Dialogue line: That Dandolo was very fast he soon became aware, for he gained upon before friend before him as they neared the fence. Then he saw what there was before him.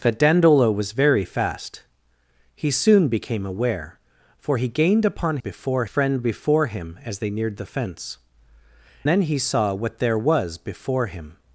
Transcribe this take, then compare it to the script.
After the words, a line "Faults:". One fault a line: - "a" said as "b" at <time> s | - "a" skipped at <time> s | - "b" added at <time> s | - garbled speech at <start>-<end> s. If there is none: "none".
That Dandolo was very fast he soon became aware, for he gained upon before friend before him as they neared the fence. Then he saw what there was before him.
Faults:
none